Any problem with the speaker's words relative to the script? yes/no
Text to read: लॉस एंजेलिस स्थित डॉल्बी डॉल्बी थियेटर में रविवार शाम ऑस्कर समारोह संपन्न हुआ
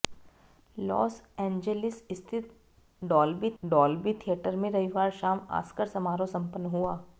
no